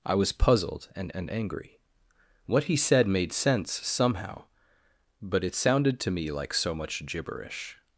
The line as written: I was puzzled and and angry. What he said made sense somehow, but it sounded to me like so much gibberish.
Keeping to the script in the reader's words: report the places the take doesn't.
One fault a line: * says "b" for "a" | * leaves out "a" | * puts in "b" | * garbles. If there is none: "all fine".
all fine